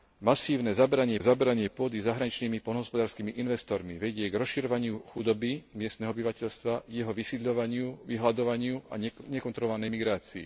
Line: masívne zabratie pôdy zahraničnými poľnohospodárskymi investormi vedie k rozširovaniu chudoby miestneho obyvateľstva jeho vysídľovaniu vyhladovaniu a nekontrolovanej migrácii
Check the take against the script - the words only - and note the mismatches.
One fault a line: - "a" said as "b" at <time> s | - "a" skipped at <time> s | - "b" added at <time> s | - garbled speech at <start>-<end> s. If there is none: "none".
- "zabratie" added at 1.2 s